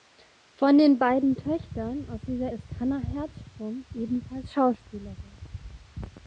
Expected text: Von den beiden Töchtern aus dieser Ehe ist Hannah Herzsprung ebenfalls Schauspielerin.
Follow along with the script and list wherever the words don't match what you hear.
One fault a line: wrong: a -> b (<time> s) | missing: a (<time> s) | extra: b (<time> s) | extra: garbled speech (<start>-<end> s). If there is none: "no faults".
missing: Ehe (2.5 s)